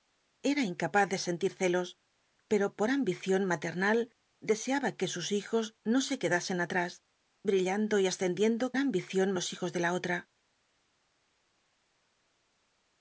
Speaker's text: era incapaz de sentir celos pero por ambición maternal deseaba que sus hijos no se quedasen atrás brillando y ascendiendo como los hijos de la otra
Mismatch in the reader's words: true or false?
true